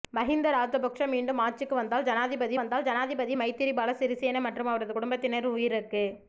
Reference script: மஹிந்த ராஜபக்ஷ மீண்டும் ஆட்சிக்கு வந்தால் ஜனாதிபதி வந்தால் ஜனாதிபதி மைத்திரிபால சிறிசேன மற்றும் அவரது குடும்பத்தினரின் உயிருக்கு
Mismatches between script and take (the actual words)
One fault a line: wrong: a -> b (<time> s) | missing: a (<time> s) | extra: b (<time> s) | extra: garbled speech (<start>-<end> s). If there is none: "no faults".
no faults